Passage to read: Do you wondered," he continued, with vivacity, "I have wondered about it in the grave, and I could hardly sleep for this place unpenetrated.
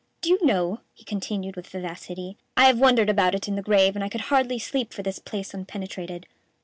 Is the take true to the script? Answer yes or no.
no